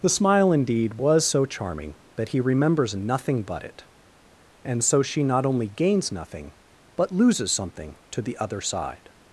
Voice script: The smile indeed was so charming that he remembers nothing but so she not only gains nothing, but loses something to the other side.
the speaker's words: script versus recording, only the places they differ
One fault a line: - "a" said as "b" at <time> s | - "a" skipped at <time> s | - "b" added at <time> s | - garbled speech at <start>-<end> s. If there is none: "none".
- "it and" added at 3.6 s